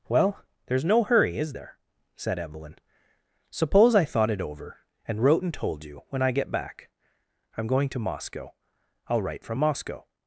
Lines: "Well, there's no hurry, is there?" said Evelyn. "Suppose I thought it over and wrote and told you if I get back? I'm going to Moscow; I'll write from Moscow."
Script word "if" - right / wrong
wrong